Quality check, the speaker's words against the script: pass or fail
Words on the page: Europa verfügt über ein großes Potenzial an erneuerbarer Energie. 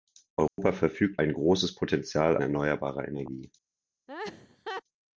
fail